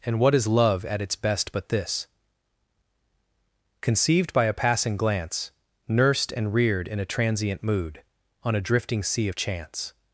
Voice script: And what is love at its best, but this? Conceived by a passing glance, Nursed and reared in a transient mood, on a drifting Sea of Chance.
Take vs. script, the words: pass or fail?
pass